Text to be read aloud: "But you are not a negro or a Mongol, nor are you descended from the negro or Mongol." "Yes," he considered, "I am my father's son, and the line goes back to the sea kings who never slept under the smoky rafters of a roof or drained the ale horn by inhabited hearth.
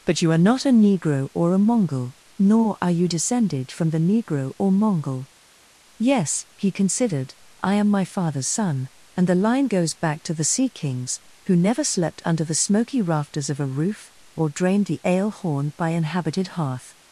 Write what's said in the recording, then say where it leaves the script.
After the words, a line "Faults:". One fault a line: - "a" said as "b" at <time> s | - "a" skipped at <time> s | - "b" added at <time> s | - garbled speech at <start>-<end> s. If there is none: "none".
"But you are not a negro or a Mongol, nor are you descended from the negro or Mongol." "Yes," he considered, "I am my father's son, and the line goes back to the sea kings who never slept under the smoky rafters of a roof or drained the ale horn by inhabited hearth.
Faults:
none